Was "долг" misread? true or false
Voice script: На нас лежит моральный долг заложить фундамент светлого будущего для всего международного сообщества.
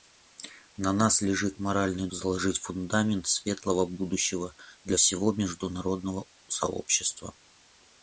true